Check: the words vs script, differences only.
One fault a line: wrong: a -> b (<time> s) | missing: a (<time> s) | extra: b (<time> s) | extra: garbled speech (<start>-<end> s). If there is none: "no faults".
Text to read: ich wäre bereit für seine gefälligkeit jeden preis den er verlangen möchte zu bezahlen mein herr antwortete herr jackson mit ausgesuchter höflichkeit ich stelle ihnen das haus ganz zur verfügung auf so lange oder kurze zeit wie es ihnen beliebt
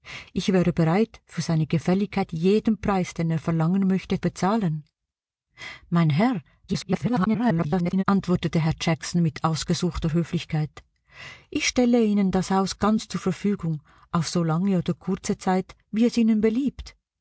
missing: zu (4.2 s)
extra: garbled speech (6.7-8.0 s)